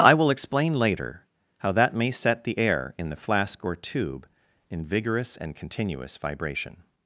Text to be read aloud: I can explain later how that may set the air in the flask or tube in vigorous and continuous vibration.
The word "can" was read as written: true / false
false